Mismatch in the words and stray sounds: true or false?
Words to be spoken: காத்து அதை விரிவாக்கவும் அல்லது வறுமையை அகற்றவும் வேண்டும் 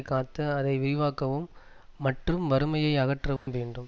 true